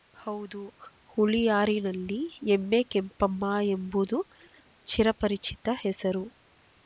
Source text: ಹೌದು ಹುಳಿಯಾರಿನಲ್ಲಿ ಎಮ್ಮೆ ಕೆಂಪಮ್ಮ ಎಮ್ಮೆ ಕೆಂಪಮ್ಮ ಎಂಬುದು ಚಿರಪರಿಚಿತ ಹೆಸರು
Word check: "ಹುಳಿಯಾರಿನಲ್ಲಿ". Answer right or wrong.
right